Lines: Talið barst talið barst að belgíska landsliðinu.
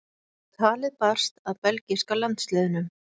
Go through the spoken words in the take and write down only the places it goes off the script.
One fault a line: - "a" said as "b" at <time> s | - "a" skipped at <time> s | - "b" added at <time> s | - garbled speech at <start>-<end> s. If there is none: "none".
- "talið barst" skipped at 1.4 s